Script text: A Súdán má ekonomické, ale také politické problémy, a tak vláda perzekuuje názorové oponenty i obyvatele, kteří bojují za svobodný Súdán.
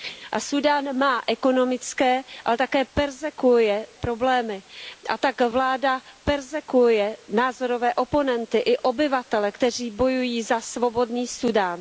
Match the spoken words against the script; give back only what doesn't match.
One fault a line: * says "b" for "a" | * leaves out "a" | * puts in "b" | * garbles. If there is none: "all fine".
* says "perzekuuje" for "politické"